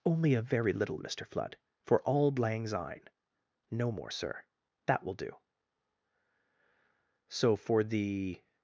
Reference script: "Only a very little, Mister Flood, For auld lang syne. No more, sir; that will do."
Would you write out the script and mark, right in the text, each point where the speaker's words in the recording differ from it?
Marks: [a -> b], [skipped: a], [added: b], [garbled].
"Only a very little, Mister Flood, For auld lang syne. No more, sir; that will do." [added: So for the]